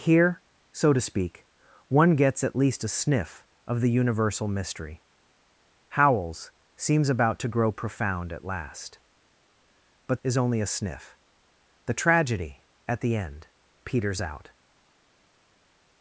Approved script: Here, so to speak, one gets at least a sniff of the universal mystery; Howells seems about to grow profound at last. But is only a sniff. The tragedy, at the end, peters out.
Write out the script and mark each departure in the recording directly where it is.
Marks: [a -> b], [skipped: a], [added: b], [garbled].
Here, so to speak, one gets at least a sniff of the universal mystery; Howells seems about to grow profound at last. But is only a sniff. The tragedy, at the end, peters out.